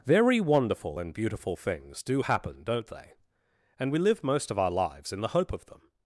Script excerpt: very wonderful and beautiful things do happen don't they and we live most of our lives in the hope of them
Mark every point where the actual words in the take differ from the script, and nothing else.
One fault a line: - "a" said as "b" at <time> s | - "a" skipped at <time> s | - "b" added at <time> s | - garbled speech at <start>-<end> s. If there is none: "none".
none